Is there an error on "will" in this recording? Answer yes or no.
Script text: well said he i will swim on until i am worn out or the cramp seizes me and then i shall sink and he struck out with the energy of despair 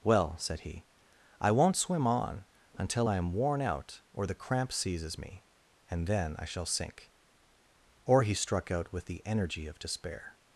yes